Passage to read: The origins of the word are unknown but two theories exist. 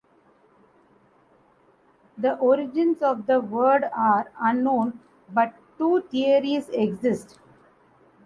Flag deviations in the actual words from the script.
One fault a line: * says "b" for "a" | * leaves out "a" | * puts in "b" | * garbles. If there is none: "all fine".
all fine